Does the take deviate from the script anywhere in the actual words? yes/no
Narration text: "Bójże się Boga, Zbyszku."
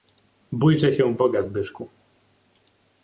no